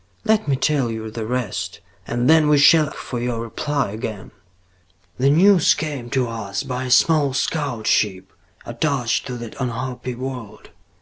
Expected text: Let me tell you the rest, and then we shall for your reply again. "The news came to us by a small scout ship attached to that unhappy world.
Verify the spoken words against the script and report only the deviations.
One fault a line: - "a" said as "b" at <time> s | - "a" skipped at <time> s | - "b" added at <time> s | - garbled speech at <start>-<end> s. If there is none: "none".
none